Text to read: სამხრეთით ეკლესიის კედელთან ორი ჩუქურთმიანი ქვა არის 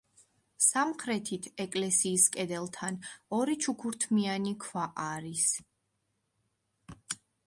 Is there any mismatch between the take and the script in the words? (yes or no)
no